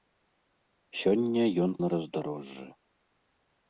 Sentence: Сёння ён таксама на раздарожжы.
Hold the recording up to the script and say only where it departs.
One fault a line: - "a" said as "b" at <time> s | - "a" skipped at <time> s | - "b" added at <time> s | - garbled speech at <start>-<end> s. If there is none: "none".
- "таксама" skipped at 1.7 s